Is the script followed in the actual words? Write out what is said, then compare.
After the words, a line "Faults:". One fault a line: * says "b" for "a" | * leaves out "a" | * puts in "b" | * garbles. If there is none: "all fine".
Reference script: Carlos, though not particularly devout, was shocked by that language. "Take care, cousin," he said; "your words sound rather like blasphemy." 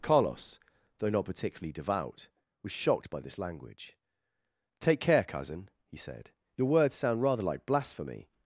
Carlos, though not particularly devout, was shocked by this language. "Take care, cousin," he said; "your words sound rather like blasphemy."
Faults:
* says "this" for "that"